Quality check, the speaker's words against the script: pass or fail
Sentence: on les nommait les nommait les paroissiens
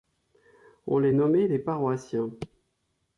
fail